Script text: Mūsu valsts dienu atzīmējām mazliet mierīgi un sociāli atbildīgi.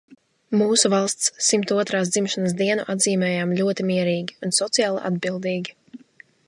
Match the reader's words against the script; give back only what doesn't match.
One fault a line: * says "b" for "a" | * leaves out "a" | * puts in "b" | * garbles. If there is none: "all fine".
* puts in "simt otrās dzimšanas"
* says "ļoti" for "mazliet"